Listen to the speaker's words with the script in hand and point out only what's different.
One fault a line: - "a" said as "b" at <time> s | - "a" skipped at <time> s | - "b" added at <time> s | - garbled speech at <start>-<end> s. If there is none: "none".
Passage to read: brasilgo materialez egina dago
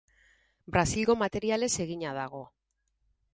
none